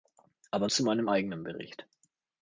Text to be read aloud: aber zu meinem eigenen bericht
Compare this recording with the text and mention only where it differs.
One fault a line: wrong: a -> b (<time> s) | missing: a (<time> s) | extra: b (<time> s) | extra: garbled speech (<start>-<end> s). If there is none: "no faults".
no faults